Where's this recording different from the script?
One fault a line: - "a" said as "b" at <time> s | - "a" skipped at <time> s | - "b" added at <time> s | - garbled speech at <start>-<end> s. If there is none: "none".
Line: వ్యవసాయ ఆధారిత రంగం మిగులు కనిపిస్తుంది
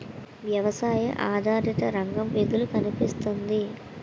none